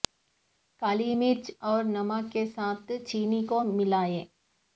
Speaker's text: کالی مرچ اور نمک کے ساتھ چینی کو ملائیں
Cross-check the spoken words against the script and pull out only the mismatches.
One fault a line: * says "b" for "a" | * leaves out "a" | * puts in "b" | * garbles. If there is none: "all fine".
all fine